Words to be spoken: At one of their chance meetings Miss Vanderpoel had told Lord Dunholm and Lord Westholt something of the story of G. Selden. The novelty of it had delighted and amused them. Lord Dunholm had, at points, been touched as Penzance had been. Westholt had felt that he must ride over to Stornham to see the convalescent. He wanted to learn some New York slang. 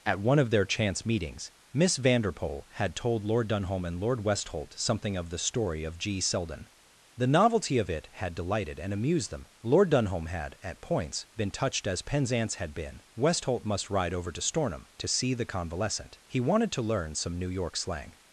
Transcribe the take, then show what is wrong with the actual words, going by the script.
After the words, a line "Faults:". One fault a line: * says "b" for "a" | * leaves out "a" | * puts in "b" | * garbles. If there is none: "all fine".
At one of their chance meetings Miss Vanderpoel had told Lord Dunholm and Lord Westholt something of the story of G. Selden. The novelty of it had delighted and amused them. Lord Dunholm had, at points, been touched as Penzance had been. Westholt must ride over to Stornham to see the convalescent. He wanted to learn some New York slang.
Faults:
* leaves out "had felt that he"